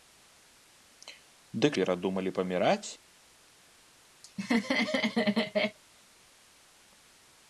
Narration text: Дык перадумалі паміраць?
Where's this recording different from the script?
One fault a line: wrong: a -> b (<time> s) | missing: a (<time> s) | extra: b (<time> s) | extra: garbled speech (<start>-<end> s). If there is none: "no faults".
no faults